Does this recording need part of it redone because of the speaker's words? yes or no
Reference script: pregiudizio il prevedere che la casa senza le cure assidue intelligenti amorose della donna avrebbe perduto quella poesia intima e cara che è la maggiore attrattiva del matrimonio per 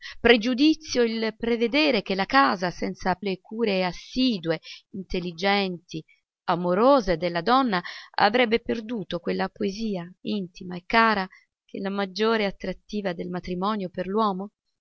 no